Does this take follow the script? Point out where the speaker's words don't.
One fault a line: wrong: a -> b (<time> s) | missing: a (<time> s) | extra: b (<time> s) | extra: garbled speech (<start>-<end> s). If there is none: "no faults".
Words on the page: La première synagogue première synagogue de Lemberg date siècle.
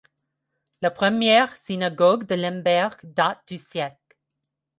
missing: première synagogue (2.2 s)
extra: du (3.5 s)